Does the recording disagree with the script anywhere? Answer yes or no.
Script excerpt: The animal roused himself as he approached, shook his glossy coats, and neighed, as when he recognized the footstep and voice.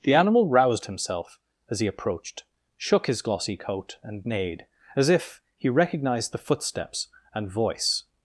yes